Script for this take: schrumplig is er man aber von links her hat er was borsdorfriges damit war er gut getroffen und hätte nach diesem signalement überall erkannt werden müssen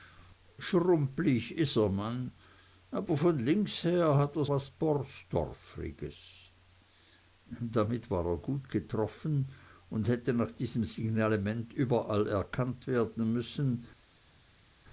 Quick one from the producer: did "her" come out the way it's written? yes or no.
yes